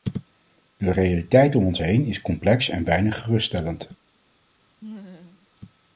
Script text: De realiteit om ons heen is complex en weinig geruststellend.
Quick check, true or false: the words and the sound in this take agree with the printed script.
false